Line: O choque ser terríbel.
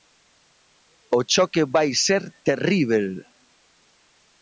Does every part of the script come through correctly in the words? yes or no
no